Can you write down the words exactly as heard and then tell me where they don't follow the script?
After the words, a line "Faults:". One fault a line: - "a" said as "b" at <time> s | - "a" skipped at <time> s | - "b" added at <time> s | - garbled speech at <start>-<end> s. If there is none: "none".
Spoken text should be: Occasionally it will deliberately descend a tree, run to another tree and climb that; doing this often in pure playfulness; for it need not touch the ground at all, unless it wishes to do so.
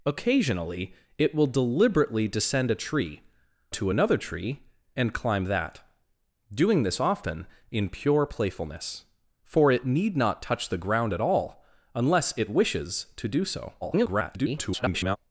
Occasionally it will deliberately descend a tree, to another tree and climb that; doing this often in pure playfulness; for it need not touch the ground at all, unless it wishes to do so. [garbled]
Faults:
- "run" skipped at 3.2 s
- garbled speech at 13.8-15.2 s